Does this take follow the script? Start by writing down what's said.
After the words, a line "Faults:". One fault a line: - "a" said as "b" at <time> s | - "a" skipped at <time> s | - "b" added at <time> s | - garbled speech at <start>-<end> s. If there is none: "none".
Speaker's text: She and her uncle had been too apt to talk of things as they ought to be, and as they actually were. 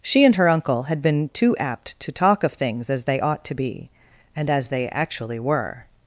She and her uncle had been too apt to talk of things as they ought to be, and as they actually were.
Faults:
none